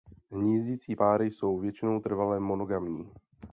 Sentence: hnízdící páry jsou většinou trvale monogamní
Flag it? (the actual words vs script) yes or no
no